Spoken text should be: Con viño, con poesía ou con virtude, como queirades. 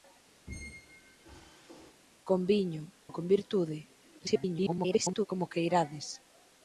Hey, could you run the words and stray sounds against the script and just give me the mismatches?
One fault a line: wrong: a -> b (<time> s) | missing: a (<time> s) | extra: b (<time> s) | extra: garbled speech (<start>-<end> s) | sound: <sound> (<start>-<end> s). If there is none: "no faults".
sound: squeak (0.5-2.0 s)
missing: con poesía (2.8 s)
extra: garbled speech (4.2-5.3 s)